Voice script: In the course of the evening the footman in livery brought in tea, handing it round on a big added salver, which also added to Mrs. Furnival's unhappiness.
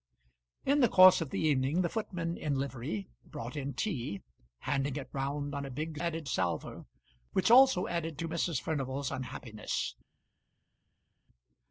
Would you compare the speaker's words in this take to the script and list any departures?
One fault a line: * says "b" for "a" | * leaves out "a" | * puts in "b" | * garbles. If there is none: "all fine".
all fine